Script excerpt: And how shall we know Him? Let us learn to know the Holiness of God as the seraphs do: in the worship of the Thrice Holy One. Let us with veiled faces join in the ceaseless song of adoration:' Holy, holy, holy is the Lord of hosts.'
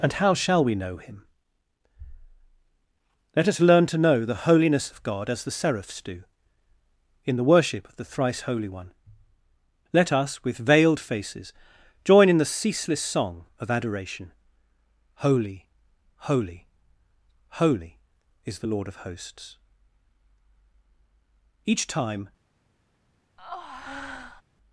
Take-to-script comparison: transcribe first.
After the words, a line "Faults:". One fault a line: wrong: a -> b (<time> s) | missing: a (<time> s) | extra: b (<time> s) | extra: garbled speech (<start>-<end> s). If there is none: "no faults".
And how shall we know Him? Let us learn to know the Holiness of God as the seraphs do: in the worship of the Thrice Holy One. Let us with veiled faces join in the ceaseless song of adoration:' Holy, holy, holy is the Lord of hosts.' Each time
Faults:
extra: Each time (21.6 s)